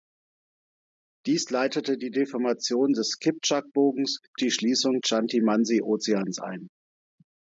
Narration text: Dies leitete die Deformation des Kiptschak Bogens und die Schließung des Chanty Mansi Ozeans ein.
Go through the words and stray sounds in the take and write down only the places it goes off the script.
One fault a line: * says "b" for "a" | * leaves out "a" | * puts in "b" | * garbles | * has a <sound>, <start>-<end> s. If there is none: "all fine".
* leaves out "und"
* leaves out "des"